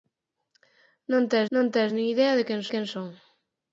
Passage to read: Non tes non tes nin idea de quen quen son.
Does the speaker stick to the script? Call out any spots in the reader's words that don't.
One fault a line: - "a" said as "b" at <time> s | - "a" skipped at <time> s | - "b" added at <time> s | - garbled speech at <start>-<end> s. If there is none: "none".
none